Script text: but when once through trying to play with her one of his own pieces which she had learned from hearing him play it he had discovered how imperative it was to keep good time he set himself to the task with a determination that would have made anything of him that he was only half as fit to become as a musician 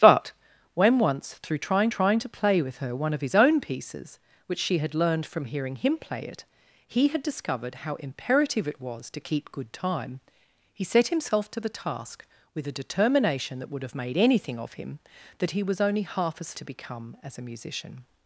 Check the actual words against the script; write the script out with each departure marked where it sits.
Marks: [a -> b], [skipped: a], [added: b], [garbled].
but when once through trying [added: trying] to play with her one of his own pieces which she had learned from hearing him play it he had discovered how imperative it was to keep good time he set himself to the task with a determination that would have made anything of him that he was only half as [skipped: fit] to become as a musician